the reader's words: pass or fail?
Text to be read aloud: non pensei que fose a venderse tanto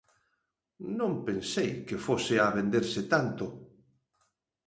pass